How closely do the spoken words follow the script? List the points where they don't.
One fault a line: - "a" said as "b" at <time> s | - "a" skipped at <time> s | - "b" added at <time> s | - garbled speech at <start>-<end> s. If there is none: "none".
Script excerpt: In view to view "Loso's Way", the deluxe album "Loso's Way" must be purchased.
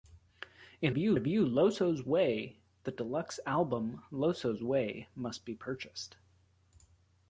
none